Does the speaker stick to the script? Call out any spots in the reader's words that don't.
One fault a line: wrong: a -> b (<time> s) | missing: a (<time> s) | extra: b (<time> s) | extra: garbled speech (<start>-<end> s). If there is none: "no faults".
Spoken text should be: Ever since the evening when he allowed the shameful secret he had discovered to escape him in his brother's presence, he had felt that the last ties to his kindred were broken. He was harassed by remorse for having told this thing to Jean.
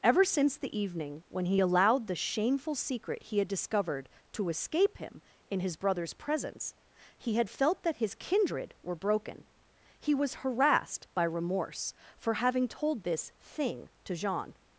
missing: the last ties to (8.0 s)